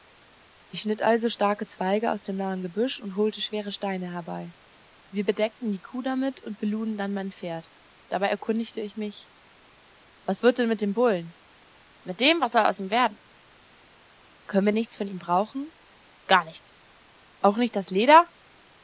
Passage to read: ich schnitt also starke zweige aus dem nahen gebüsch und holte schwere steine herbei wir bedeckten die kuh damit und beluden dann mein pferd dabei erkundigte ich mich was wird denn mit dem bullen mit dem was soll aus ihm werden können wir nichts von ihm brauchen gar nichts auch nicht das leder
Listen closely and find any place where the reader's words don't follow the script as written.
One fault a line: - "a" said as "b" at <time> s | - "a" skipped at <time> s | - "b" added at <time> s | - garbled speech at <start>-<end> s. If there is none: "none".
none